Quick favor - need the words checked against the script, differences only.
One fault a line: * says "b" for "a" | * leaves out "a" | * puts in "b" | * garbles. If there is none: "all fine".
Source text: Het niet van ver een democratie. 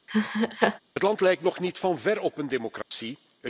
* puts in "land lijkt nog"
* puts in "op"